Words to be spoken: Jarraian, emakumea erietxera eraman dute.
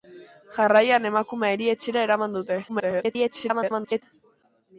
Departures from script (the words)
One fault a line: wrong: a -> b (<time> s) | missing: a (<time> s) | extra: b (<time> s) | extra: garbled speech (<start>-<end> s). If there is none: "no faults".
extra: garbled speech (2.7-4.0 s)